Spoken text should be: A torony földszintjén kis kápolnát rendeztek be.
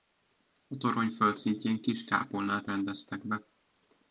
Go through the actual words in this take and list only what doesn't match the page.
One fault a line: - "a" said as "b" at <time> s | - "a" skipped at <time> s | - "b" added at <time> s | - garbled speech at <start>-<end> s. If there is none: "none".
none